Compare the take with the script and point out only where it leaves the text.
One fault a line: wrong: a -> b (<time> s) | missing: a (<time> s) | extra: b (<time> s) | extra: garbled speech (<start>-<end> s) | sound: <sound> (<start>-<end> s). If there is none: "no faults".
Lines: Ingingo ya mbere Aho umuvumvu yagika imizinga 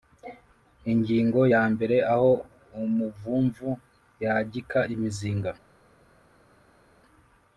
no faults